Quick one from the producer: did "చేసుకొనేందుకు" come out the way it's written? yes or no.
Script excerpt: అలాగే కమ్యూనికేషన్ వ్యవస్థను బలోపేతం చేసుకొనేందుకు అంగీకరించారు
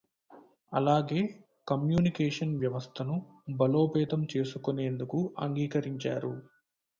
yes